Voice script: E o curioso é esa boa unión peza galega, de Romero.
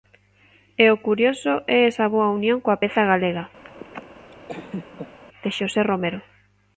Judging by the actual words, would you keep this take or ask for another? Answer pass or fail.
fail